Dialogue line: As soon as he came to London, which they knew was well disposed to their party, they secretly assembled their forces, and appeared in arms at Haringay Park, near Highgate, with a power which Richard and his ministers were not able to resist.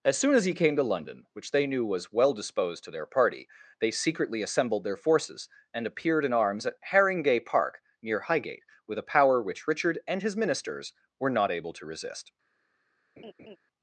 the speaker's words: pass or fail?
pass